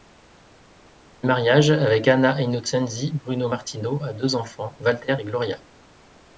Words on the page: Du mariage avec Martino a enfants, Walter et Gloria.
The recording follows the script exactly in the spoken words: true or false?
false